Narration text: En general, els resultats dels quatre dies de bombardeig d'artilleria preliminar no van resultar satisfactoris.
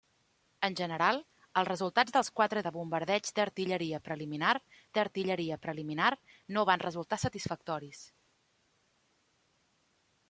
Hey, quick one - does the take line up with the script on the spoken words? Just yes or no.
no